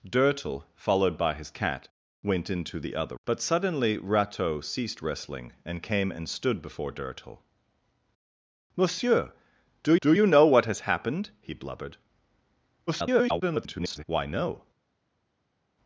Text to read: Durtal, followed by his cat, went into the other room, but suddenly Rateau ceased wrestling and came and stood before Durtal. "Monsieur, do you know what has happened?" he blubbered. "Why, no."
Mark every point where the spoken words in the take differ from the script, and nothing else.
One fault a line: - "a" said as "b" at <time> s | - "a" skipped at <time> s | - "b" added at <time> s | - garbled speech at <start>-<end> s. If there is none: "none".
- "room" skipped at 3.1 s
- "do" added at 10.0 s
- garbled speech at 12.9-14.0 s